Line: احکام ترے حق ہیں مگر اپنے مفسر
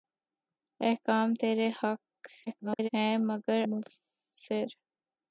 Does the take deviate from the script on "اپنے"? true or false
true